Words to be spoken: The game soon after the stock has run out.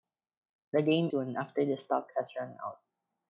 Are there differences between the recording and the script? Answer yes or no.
no